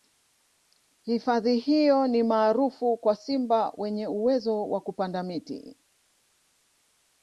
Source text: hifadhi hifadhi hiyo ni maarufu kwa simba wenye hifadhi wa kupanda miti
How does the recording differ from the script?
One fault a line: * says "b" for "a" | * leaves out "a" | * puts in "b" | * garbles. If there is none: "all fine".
* leaves out "hifadhi"
* says "uwezo" for "hifadhi"